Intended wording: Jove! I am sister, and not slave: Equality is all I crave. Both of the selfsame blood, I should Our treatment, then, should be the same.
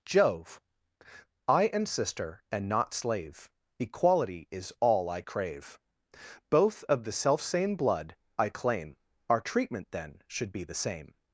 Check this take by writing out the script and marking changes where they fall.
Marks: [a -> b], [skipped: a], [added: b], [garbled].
Jove! I am sister, and not slave: Equality is all I crave. Both of the selfsame blood, I [should -> claim] Our treatment, then, should be the same.